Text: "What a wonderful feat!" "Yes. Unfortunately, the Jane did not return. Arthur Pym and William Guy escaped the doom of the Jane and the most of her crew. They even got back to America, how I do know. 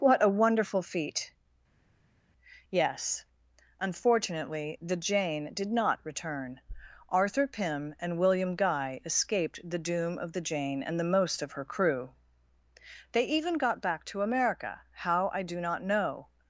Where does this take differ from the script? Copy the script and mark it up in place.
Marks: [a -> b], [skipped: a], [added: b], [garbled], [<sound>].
"What a wonderful feat!" "Yes. Unfortunately, the Jane did not return. Arthur Pym and William Guy escaped the doom of the Jane and the most of her crew. They even got back to America, how I do [added: not] know.